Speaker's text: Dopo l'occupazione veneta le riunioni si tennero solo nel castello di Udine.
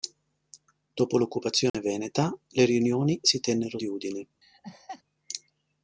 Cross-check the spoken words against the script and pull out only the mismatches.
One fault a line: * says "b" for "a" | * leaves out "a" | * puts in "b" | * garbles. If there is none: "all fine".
* leaves out "solo nel castello"